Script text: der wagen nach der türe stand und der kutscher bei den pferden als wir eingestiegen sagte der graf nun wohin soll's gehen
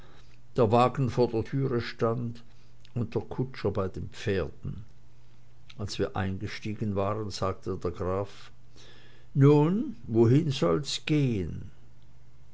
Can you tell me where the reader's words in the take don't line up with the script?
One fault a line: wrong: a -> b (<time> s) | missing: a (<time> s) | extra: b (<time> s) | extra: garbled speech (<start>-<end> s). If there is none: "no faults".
wrong: nach -> vor (1.1 s)
extra: waren (7.0 s)